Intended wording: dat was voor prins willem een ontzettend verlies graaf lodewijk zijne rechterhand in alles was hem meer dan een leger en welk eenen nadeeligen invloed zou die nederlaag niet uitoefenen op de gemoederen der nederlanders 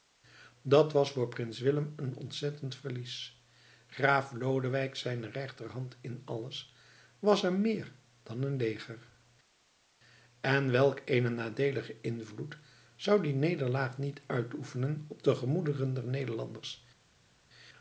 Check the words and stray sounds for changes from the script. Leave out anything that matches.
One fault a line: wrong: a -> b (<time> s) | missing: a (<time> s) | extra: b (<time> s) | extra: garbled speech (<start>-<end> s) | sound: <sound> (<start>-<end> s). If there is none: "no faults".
no faults